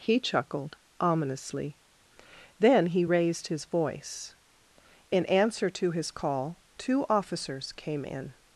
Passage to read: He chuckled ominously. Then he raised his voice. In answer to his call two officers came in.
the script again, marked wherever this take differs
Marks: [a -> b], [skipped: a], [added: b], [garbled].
He chuckled ominously. Then he raised his voice. In answer to his call two officers came in.